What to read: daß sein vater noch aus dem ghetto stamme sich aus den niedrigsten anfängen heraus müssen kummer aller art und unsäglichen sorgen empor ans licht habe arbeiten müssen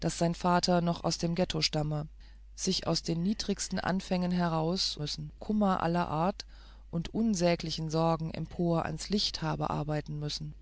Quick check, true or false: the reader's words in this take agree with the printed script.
true